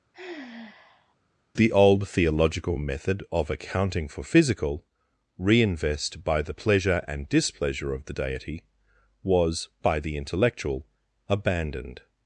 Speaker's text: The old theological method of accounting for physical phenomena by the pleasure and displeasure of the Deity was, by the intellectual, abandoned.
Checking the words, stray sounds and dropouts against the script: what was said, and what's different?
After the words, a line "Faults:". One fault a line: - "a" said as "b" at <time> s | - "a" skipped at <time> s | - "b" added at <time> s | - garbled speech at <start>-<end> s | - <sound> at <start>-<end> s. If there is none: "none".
The old theological method of accounting for physical reinvest by the pleasure and displeasure of the Deity was, by the intellectual, abandoned.
Faults:
- sigh at 0.1-1.2 s
- "phenomena" said as "reinvest" at 5.4 s